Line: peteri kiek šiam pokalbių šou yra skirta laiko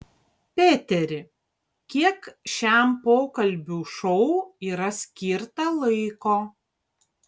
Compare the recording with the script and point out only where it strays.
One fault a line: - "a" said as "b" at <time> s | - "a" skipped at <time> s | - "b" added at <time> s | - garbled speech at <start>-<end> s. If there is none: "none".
none